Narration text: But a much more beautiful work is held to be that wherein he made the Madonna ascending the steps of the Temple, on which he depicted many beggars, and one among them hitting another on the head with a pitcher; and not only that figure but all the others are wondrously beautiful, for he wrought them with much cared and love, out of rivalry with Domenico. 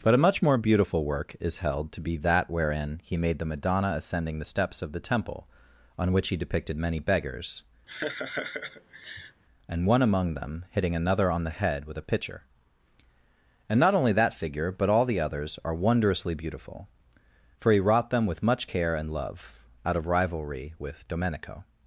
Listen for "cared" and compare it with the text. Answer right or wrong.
wrong